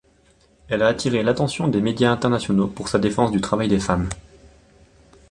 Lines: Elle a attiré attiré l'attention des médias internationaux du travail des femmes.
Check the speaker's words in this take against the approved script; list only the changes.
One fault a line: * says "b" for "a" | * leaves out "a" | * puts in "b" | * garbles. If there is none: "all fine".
* leaves out "attiré"
* puts in "pour sa défense"